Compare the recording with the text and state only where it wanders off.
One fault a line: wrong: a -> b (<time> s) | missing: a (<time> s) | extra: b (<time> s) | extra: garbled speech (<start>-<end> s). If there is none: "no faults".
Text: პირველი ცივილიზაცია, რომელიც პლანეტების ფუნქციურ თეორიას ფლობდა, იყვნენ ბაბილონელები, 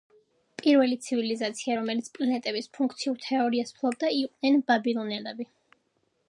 no faults